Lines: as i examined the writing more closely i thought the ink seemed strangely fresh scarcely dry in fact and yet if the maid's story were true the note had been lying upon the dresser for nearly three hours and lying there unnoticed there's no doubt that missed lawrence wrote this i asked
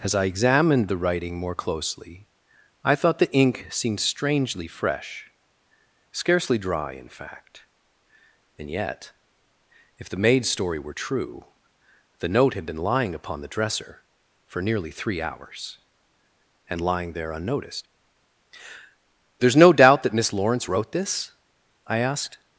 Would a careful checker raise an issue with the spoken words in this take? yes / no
yes